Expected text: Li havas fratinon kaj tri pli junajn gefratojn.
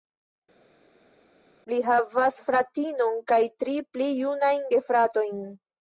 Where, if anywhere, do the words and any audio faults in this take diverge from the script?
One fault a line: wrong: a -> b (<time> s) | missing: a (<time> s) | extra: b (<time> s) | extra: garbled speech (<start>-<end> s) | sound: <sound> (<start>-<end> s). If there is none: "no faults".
no faults